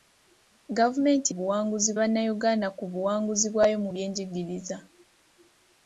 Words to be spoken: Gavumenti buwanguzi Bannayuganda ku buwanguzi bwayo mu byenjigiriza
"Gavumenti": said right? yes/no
yes